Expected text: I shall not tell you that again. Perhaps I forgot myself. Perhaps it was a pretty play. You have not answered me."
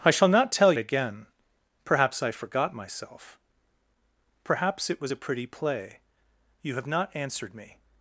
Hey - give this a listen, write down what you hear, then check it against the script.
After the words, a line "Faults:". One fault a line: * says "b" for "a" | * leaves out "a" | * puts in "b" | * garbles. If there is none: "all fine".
I shall not tell again. Perhaps I forgot myself. Perhaps it was a pretty play. You have not answered me."
Faults:
* leaves out "you that"